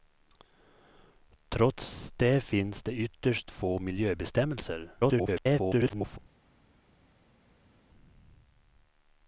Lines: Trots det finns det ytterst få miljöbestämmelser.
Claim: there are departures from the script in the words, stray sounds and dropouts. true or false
true